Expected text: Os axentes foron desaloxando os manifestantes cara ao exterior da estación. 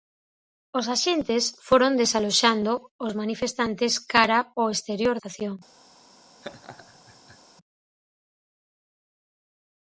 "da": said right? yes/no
no